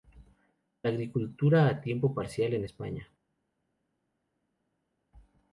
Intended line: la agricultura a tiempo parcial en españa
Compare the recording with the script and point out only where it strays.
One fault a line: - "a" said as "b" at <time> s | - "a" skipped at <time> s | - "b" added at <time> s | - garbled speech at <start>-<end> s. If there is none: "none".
none